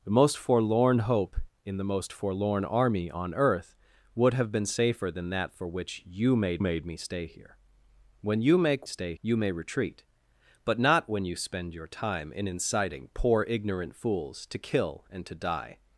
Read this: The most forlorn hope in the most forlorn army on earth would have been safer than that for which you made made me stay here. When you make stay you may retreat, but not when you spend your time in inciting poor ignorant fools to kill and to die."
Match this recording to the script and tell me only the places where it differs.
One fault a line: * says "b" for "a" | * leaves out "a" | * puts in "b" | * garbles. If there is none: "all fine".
all fine